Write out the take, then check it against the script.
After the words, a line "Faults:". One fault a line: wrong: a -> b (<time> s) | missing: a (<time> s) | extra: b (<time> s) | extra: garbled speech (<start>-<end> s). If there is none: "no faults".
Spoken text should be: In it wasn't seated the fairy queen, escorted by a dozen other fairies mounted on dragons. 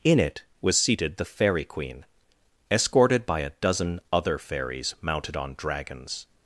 In it was seated the fairy queen, escorted by a dozen other fairies mounted on dragons.
Faults:
wrong: wasn't -> was (0.6 s)